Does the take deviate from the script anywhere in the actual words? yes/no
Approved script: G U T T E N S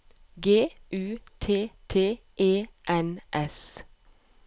no